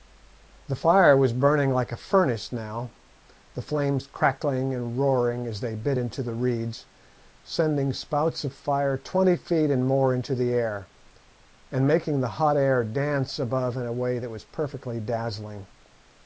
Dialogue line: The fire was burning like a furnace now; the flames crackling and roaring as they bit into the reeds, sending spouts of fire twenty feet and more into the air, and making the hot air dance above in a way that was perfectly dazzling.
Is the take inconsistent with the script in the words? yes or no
no